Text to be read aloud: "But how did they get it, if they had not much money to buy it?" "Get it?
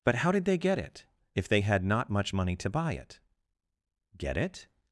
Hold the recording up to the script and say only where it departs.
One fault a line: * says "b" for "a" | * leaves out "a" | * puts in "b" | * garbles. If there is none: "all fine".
all fine